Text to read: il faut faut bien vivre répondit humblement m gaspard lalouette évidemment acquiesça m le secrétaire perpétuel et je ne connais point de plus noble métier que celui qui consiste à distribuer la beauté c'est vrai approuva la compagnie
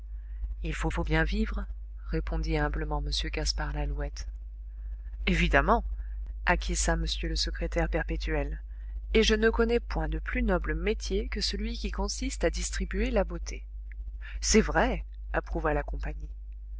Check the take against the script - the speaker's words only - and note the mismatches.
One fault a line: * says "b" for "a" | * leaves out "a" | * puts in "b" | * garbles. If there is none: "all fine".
all fine